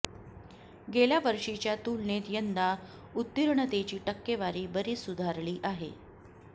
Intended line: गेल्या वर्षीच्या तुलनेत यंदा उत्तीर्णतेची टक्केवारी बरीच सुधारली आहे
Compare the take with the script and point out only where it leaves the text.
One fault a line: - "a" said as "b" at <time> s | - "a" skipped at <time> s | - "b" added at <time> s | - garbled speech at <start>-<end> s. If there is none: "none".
none